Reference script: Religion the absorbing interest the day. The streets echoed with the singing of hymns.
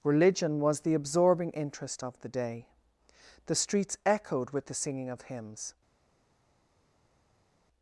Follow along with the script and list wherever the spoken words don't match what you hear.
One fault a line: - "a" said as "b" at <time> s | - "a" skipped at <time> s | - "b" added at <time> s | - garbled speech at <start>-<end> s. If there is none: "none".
- "was" added at 0.6 s
- "of" added at 2.0 s